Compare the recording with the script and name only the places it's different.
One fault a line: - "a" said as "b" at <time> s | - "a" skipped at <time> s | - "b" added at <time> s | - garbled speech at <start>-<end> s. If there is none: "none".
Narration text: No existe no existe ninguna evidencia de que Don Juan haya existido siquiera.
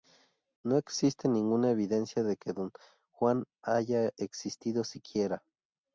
- "no existe" skipped at 1.3 s